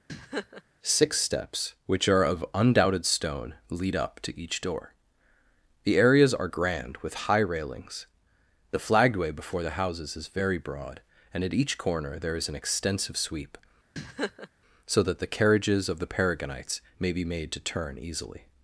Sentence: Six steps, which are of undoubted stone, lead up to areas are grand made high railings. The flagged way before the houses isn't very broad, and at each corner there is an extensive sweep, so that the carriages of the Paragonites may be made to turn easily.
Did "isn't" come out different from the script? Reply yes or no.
yes